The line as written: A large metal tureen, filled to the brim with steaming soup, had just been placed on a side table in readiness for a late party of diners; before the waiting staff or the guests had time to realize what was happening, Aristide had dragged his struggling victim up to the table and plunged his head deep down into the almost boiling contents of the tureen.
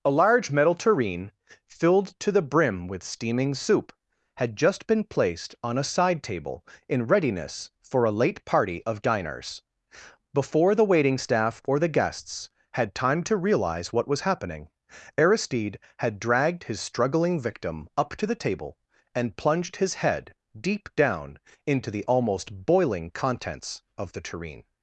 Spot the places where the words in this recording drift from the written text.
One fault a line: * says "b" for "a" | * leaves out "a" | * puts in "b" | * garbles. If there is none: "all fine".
all fine